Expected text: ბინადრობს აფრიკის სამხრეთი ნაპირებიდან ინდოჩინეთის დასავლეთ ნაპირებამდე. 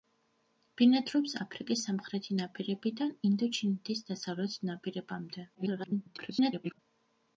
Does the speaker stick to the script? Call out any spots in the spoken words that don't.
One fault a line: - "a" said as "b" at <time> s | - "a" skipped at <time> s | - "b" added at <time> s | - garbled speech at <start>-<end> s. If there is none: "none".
- garbled speech at 5.5-6.8 s